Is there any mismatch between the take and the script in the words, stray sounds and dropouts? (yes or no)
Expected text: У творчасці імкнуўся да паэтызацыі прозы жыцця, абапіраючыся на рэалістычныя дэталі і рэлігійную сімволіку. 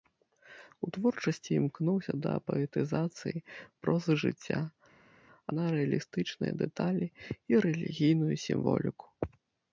yes